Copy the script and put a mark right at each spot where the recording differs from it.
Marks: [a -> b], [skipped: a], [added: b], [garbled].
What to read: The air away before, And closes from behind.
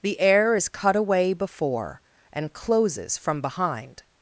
The air [added: is cut] away before, And closes from behind.